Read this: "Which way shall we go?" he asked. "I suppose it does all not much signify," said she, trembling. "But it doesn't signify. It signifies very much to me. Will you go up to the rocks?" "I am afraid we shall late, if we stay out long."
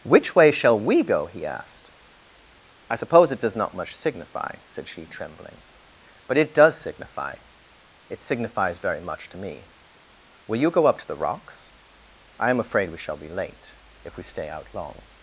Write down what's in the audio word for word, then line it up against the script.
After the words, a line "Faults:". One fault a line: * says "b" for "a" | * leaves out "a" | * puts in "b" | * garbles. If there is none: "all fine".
"Which way shall we go?" he asked. "I suppose it does not much signify," said she, trembling. "But it does signify. It signifies very much to me. Will you go up to the rocks?" "I am afraid we shall be late, if we stay out long."
Faults:
* leaves out "all"
* says "does" for "doesn't"
* puts in "be"